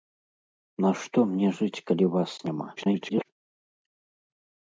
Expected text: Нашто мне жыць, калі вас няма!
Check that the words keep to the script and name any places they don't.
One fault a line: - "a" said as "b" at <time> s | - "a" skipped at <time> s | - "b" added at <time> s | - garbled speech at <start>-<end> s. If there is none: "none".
- garbled speech at 2.8-3.3 s